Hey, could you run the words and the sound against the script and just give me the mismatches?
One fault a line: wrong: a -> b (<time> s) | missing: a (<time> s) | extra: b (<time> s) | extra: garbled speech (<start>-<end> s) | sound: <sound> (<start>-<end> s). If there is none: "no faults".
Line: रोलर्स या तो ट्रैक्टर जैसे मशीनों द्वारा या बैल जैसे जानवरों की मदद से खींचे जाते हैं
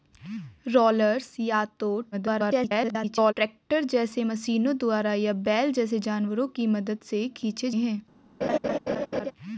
extra: garbled speech (2.1-3.3 s)
missing: जाते (7.7 s)
sound: laugh (8.4-9.3 s)